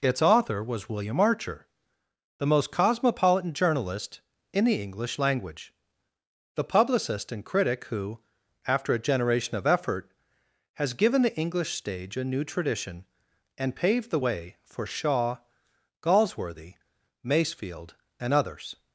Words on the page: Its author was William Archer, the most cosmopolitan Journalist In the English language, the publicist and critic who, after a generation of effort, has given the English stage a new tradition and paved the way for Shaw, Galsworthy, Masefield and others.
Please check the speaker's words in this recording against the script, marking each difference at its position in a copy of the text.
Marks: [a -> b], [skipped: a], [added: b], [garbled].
Its author was William Archer, the most cosmopolitan Journalist In the English language, the publicist and critic who, after a generation of effort, has given the English stage a new tradition and paved the way for Shaw, Galsworthy, Masefield and others.